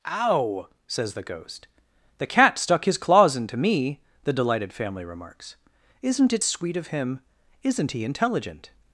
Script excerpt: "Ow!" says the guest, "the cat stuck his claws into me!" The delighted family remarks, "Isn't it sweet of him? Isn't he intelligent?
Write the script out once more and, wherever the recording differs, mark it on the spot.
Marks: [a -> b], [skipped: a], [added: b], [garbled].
"Ow!" says the [guest, -> ghost] "the cat stuck his claws into me!" The delighted family remarks, "Isn't it sweet of him? Isn't he intelligent?